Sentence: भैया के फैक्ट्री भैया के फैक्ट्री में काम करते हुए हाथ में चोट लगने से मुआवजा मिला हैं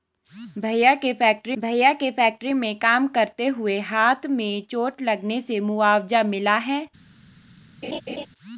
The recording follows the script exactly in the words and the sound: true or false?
false